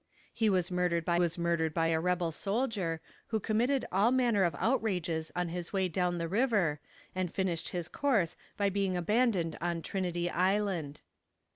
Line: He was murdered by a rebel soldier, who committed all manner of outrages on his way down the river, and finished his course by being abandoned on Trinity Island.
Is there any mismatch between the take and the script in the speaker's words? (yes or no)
yes